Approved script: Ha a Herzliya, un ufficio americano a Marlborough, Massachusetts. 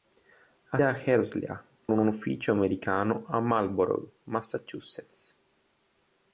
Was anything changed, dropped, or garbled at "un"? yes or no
no